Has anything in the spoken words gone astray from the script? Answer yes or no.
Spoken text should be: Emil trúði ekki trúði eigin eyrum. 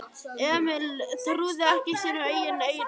yes